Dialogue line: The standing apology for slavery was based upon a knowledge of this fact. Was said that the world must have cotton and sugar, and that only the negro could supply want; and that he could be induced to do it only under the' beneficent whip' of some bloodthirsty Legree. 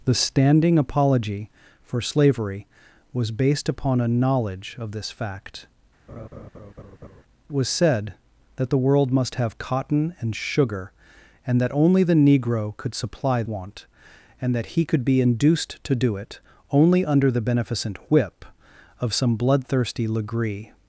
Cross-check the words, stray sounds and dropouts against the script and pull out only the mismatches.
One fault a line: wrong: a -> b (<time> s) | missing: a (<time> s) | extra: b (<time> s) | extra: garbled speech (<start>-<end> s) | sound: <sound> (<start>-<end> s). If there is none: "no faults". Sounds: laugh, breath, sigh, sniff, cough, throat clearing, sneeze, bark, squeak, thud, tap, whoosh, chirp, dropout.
sound: laugh (6.1-7.2 s)